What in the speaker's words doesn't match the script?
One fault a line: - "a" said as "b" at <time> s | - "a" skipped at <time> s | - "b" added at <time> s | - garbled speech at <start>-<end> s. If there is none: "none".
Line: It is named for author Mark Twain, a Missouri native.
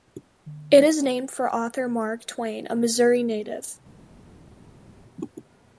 none